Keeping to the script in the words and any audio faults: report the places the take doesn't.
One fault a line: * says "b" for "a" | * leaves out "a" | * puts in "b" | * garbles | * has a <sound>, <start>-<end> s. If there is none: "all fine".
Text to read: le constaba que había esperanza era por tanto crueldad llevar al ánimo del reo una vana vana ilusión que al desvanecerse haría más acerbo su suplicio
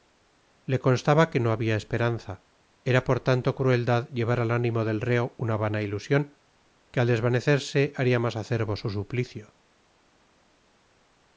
* puts in "no"
* leaves out "vana"